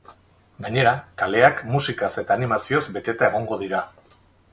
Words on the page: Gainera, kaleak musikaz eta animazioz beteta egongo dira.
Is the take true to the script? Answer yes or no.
yes